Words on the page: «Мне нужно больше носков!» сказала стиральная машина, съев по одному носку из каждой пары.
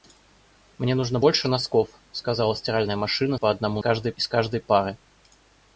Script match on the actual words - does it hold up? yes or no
no